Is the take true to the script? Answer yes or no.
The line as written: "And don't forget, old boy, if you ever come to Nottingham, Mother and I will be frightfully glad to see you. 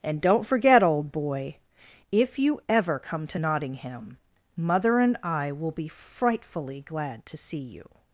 yes